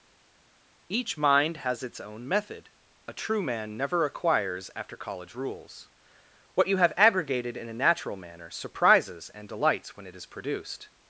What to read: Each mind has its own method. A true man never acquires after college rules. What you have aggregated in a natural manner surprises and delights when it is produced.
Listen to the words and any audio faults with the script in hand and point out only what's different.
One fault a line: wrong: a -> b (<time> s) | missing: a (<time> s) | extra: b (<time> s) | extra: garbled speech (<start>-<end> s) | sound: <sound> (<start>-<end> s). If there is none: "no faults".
no faults